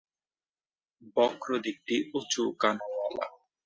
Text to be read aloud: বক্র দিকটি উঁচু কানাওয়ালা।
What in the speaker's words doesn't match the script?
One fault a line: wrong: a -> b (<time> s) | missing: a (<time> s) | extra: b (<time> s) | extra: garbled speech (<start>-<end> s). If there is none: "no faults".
no faults